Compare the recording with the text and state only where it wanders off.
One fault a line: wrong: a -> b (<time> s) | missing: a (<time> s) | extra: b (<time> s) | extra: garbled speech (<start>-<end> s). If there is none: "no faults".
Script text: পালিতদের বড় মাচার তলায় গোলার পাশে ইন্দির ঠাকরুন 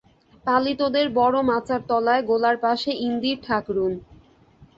no faults